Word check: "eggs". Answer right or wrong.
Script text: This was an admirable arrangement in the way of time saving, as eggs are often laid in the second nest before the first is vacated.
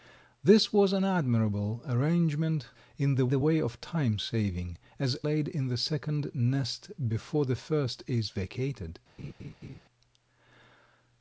wrong